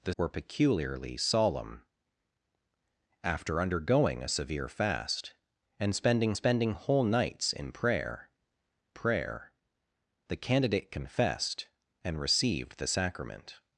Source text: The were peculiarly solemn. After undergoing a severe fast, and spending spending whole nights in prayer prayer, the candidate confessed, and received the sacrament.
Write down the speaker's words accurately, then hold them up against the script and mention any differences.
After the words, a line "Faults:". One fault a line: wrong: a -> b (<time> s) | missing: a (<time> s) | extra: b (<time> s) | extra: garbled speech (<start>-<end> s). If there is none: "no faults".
The were peculiarly solemn. After undergoing a severe fast, and spending spending whole nights in prayer prayer, the candidate confessed, and received the sacrament.
Faults:
no faults